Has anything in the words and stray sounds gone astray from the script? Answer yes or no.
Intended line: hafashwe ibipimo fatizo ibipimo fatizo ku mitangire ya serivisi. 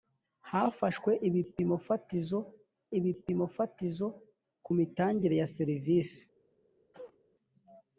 yes